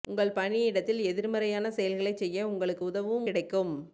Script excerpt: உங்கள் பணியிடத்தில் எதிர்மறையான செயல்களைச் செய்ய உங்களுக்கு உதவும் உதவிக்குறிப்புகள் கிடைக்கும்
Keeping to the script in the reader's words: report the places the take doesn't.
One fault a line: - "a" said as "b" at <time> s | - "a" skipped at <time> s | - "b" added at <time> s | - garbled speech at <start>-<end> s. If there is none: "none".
- "உதவிக்குறிப்புகள்" skipped at 3.3 s